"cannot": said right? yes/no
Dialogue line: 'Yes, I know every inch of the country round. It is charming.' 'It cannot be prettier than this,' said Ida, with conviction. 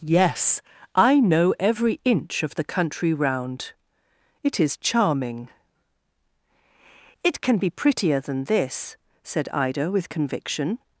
no